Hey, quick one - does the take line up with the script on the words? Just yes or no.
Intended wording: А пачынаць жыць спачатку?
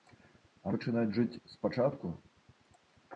yes